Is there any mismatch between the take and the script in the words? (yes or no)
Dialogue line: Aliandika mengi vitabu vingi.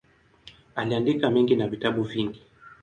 yes